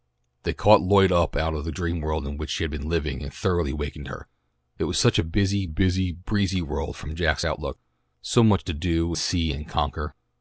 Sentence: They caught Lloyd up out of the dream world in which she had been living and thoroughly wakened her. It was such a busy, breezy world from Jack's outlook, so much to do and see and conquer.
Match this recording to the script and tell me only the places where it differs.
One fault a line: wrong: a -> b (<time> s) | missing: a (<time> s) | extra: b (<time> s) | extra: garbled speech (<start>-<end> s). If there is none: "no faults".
extra: busy (5.7 s)
missing: and (9.1 s)